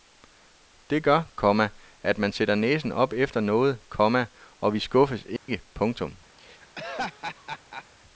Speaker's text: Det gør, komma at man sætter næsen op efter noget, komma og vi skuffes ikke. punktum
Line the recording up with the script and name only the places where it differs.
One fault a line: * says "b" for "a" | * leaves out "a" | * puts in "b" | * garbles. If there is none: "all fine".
all fine